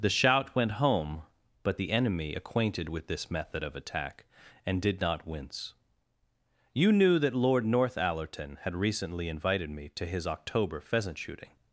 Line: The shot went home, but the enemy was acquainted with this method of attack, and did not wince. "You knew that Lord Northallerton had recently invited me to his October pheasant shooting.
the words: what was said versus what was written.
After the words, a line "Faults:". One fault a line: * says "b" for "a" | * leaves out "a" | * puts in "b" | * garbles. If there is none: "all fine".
The shout went home, but the enemy acquainted with this method of attack, and did not wince. "You knew that Lord Northallerton had recently invited me to his October pheasant shooting.
Faults:
* says "shout" for "shot"
* leaves out "was"